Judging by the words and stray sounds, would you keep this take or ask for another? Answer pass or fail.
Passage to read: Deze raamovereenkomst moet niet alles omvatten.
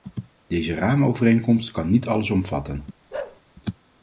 fail